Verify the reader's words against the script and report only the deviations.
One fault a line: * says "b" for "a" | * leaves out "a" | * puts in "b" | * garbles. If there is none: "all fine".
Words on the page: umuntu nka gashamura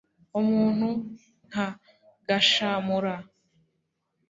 all fine